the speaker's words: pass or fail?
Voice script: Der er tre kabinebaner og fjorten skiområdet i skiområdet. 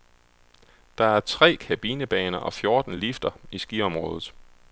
fail